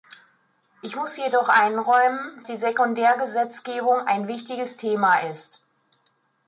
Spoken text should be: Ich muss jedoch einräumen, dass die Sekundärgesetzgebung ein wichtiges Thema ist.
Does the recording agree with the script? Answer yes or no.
no